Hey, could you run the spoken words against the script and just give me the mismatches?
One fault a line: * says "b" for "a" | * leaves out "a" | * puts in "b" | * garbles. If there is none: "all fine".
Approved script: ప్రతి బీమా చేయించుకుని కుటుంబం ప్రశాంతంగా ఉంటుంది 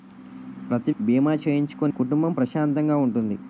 all fine